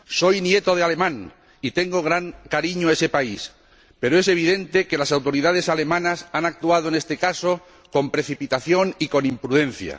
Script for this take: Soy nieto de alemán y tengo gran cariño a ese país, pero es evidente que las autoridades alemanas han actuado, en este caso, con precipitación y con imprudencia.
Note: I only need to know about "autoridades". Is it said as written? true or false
true